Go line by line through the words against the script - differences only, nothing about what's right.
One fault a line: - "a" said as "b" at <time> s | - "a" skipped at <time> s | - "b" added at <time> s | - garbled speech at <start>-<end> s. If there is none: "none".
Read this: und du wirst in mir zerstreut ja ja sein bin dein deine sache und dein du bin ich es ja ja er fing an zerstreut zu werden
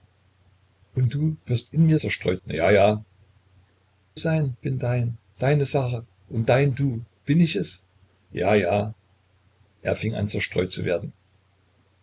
none